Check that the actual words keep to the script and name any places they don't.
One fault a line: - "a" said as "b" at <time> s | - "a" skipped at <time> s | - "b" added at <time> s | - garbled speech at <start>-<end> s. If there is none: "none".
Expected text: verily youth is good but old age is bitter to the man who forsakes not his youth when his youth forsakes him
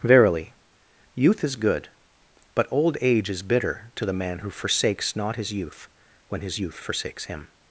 none